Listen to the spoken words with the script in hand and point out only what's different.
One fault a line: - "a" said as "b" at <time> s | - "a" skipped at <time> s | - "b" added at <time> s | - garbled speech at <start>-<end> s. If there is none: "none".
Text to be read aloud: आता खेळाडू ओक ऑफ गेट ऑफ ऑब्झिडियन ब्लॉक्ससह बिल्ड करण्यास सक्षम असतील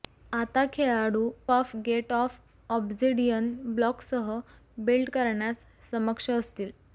- "ओक" skipped at 1.3 s